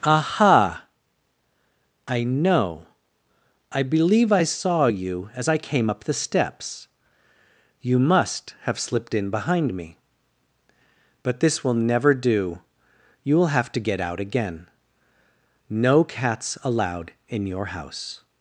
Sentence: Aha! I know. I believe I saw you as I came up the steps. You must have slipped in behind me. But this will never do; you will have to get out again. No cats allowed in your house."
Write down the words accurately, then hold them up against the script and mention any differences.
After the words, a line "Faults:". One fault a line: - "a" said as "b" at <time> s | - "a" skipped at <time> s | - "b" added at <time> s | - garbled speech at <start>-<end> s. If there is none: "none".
Aha! I know. I believe I saw you as I came up the steps. You must have slipped in behind me. But this will never do; you will have to get out again. No cats allowed in your house."
Faults:
none